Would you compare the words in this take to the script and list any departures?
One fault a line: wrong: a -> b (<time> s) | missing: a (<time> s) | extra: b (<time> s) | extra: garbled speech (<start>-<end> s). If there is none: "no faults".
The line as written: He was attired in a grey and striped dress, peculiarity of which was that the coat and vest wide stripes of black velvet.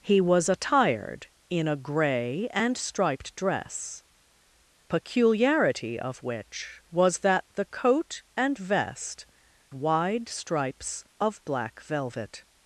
no faults